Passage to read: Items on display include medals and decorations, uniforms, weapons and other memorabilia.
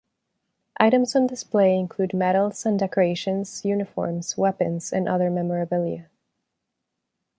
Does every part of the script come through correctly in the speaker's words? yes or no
yes